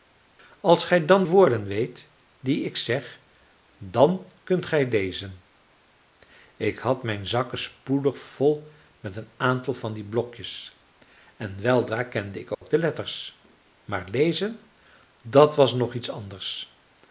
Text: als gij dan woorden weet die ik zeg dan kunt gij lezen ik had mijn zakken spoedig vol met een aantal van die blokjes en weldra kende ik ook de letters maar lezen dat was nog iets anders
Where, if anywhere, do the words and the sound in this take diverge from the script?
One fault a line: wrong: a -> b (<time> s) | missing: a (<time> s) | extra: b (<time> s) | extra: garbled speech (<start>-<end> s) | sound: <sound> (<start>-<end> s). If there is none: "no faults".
sound: dropout (12.5-12.6 s)